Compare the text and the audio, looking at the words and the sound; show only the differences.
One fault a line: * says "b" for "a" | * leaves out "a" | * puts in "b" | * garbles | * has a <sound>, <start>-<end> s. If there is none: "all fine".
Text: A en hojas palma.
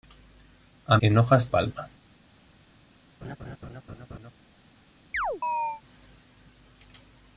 * has a laugh, 3.2-4.3 s
* has a chirp, 5.1-5.8 s